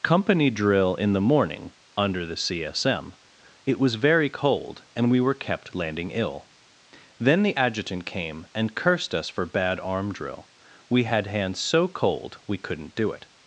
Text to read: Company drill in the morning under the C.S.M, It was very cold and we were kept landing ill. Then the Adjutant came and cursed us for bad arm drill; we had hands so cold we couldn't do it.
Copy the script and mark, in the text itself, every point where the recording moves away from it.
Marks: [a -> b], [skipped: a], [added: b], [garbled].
Company drill in the morning under the C.S.M, It was very cold and we were kept landing ill. Then the Adjutant came and cursed us for bad arm drill; we had hands so cold we couldn't do it.